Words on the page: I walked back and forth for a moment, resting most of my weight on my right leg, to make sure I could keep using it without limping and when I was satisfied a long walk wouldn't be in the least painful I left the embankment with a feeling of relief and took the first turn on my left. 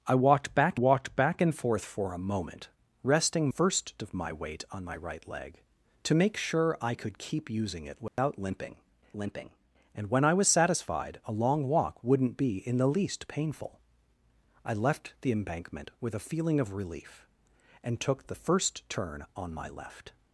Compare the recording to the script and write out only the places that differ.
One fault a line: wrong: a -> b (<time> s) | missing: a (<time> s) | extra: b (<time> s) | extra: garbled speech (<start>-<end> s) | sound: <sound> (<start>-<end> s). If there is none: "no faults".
extra: walked back (0.7 s)
wrong: most -> first (3.5 s)
sound: dropout (8.1-8.2 s)
extra: limping (9.2 s)